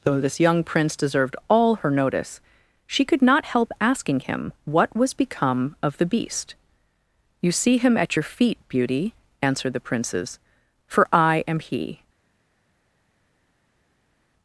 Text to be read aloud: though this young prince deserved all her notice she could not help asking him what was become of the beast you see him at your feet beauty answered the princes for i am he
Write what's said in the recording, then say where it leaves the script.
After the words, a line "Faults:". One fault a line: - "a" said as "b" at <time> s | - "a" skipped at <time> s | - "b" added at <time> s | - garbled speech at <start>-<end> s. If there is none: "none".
though this young prince deserved all her notice she could not help asking him what was become of the beast you see him at your feet beauty answered the princes for i am he
Faults:
none